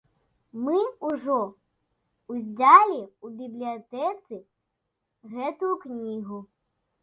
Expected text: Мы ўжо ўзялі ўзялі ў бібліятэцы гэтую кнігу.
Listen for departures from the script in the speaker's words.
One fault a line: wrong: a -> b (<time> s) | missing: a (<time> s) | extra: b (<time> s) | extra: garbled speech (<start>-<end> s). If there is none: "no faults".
missing: ўзялі (3.0 s)